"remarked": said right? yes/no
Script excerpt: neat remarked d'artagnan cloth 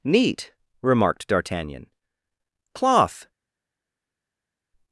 yes